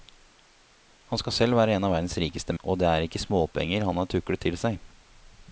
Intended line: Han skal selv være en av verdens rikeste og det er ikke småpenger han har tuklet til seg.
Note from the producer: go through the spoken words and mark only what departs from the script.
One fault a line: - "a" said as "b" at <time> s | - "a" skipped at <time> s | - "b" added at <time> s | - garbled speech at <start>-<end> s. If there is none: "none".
none